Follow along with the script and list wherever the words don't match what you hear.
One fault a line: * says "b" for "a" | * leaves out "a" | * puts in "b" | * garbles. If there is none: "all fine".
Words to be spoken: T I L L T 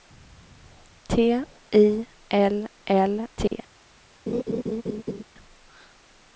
all fine